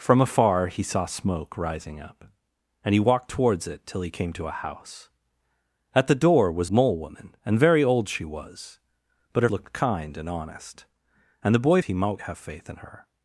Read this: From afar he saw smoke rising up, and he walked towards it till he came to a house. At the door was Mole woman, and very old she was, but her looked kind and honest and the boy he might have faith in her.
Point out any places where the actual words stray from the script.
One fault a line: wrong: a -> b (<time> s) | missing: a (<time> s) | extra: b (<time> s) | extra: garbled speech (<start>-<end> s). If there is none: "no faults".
no faults